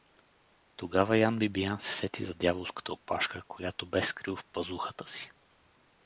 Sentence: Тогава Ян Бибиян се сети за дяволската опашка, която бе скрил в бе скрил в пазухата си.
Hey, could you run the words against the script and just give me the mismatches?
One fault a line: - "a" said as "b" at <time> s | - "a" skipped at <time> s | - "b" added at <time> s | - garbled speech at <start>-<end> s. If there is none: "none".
- "бе скрил в" skipped at 4.5 s